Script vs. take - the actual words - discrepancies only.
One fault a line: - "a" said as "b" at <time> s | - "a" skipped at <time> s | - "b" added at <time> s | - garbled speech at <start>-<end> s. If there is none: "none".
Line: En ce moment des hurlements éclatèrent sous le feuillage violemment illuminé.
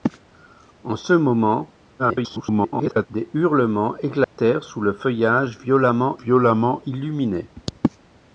- garbled speech at 2.0-3.1 s
- "violemment" added at 6.2 s